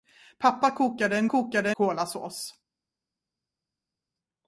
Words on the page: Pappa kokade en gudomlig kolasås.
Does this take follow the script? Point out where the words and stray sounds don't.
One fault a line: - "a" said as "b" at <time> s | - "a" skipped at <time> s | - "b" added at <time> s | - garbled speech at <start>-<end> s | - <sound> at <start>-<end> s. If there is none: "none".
- "gudomlig" said as "kokade" at 1.2 s